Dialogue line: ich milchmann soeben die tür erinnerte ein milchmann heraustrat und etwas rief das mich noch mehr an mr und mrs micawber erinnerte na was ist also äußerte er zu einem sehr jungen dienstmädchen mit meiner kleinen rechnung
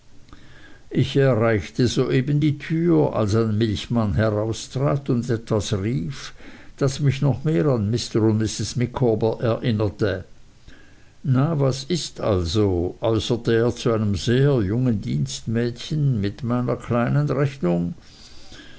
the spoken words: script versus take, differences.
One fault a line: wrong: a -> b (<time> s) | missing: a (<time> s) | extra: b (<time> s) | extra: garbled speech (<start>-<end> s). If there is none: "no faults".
wrong: milchmann -> erreichte (1.1 s)
wrong: erinnerte -> als (3.2 s)